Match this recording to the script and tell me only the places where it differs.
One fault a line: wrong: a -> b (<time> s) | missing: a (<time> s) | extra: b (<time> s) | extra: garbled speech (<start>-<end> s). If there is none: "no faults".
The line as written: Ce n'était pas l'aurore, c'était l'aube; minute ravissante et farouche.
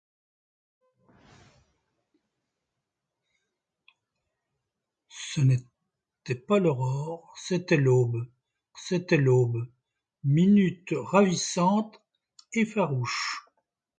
extra: c'était l'aube (8.8 s)